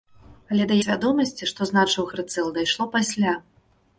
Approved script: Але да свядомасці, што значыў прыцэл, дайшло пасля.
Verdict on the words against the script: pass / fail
pass